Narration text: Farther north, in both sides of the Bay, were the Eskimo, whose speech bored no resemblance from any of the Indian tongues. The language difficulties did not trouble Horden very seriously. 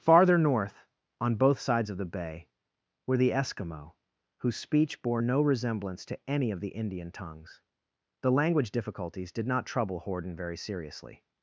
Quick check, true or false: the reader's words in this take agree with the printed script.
false